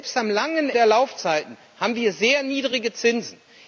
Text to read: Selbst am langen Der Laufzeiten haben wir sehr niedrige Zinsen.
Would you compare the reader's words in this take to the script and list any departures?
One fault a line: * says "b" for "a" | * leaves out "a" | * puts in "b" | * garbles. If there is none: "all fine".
all fine